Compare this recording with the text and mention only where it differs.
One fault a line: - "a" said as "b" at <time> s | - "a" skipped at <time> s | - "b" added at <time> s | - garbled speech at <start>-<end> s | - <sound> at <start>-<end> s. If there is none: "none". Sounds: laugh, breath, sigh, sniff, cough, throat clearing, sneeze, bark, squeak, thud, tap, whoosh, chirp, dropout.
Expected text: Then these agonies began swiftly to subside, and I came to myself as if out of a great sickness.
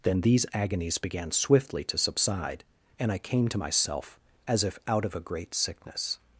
none